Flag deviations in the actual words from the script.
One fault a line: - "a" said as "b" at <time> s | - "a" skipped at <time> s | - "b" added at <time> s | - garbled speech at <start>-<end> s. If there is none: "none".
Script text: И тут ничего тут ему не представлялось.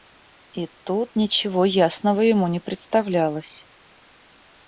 - "тут" said as "ясного" at 1.6 s